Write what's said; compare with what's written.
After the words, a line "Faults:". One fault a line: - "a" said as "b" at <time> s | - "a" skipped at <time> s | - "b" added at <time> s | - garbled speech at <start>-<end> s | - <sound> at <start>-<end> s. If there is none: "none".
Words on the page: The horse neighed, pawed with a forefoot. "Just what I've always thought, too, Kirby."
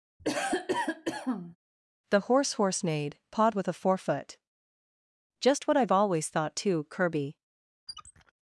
The horse horse neighed, pawed with a forefoot. "Just what I've always thought, too, Kirby."
Faults:
- cough at 0.2-1.6 s
- "horse" added at 2.5 s
- squeak at 7.9-8.3 s